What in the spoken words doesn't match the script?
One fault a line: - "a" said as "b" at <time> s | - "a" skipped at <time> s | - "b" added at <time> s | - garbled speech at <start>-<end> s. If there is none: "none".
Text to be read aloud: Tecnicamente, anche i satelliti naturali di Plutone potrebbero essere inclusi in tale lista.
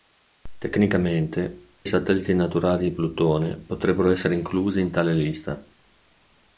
- "anche" skipped at 1.7 s